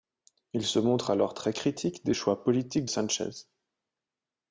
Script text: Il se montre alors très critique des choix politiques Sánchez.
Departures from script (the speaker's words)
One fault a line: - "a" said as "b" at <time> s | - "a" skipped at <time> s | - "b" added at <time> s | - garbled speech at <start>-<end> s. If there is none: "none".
none